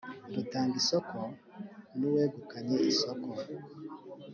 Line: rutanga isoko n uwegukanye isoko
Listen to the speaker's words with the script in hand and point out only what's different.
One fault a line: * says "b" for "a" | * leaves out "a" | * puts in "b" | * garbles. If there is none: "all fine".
all fine